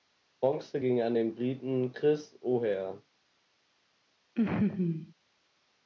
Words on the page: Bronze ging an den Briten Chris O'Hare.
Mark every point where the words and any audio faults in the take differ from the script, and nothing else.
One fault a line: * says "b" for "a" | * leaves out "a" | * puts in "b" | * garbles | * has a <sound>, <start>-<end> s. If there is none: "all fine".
* has a laugh, 4.4-5.1 s